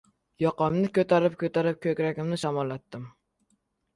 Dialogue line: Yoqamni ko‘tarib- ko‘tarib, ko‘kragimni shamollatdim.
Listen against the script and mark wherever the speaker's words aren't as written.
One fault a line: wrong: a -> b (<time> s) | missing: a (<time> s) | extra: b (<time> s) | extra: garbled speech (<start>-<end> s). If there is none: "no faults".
no faults